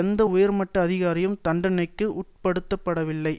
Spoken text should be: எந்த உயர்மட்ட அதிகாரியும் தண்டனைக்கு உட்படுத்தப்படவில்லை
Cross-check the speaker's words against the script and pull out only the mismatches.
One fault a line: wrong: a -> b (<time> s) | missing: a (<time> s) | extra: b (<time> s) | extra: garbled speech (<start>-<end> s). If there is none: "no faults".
no faults